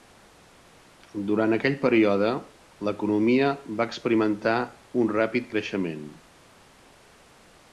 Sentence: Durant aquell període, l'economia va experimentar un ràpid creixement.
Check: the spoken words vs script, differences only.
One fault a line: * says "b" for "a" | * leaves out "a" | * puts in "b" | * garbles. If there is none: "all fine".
all fine